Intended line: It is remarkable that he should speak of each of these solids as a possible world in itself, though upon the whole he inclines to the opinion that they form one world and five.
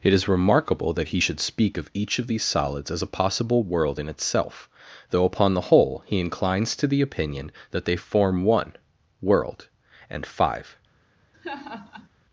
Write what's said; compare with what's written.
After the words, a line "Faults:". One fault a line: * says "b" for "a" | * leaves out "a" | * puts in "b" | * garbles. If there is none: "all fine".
It is remarkable that he should speak of each of these solids as a possible world in itself, though upon the whole he inclines to the opinion that they form one world and five.
Faults:
all fine